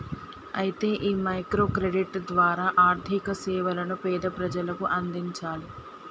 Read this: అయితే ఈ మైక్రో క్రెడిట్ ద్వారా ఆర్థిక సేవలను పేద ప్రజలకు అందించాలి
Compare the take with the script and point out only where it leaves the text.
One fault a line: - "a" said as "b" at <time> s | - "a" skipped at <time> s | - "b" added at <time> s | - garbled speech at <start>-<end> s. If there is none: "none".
none